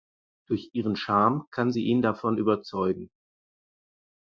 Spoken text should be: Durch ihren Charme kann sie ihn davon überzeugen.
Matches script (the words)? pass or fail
pass